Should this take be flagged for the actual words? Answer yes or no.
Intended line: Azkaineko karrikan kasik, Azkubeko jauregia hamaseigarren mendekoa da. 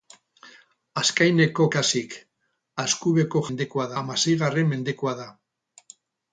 yes